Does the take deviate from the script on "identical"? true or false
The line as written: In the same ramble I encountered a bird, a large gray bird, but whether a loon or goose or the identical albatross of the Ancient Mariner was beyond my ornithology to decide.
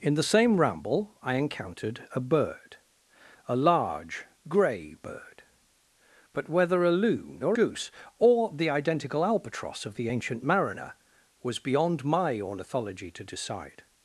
false